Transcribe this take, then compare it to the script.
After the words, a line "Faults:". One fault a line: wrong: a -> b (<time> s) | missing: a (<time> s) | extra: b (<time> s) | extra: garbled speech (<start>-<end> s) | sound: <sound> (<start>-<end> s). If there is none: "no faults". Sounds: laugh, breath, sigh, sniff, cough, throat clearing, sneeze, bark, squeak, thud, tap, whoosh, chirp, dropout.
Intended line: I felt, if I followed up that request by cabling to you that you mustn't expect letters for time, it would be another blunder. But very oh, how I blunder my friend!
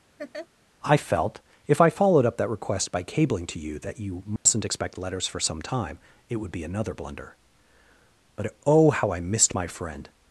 I felt, if I followed up that request by cabling to you that you mustn't expect letters for some time, it would be another blunder. But oh, how I missed my friend!
Faults:
sound: laugh (0.2-0.5 s)
sound: dropout (4.4-4.5 s)
extra: some (5.4 s)
missing: very (8.5 s)
wrong: blunder -> missed (9.2 s)